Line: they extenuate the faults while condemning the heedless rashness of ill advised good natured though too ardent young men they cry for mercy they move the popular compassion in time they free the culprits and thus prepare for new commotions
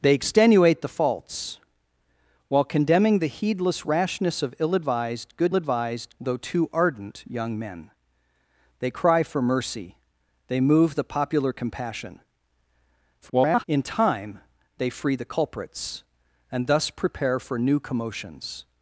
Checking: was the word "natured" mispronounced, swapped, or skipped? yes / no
yes